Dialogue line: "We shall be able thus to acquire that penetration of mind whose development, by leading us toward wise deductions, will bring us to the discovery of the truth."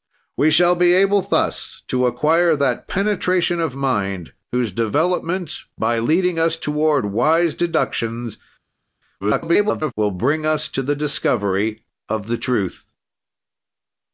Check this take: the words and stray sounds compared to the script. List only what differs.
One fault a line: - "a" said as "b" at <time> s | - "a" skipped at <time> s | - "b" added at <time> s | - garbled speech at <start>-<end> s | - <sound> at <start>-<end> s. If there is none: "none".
- garbled speech at 9.2-9.9 s